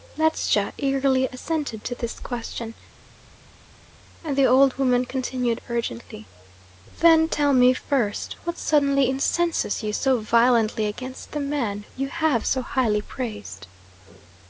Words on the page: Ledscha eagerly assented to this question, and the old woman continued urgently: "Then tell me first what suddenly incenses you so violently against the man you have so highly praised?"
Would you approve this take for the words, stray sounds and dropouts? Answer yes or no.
yes